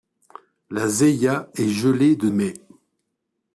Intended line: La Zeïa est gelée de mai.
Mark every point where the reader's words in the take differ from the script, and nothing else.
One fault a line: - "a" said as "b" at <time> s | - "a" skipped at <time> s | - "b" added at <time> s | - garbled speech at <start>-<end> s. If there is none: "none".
none